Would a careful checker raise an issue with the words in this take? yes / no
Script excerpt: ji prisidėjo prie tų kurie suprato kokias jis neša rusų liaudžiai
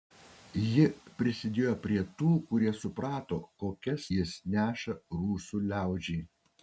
no